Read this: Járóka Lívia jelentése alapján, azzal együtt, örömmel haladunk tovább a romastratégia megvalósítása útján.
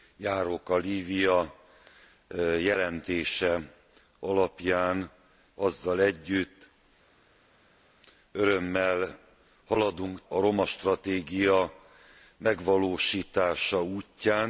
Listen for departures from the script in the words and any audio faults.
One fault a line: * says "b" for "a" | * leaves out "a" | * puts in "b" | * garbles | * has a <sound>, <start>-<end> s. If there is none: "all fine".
* leaves out "tovább"